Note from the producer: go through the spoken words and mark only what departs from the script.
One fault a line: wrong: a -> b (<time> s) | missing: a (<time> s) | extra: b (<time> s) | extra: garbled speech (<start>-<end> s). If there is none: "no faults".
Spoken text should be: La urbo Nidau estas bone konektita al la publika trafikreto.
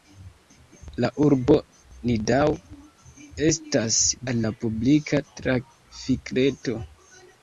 missing: bone konektita (4.0 s)